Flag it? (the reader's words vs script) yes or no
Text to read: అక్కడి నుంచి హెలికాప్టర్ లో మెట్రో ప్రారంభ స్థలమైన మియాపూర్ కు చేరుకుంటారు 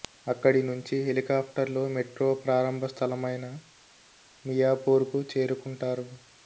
no